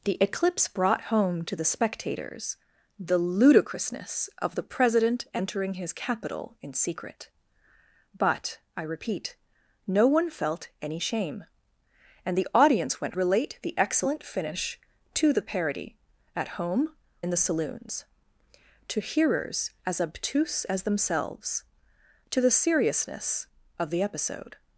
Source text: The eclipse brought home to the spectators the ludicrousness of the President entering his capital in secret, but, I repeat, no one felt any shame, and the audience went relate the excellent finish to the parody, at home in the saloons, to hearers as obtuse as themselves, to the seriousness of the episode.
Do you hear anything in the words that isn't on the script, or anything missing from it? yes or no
no